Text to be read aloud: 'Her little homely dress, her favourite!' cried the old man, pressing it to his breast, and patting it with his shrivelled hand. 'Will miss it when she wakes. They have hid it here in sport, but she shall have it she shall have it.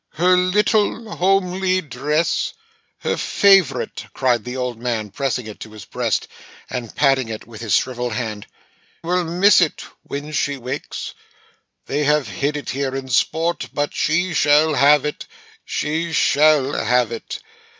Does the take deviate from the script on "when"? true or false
false